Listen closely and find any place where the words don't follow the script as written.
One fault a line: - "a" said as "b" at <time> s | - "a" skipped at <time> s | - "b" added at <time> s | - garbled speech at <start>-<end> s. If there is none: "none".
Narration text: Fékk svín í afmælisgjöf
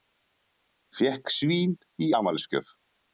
none